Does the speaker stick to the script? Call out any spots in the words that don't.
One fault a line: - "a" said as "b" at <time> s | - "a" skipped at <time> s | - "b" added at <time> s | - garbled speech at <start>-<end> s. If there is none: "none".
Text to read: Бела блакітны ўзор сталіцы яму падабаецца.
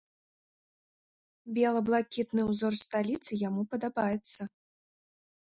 none